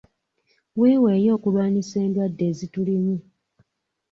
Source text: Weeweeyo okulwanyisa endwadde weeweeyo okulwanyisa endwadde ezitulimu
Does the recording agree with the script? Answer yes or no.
no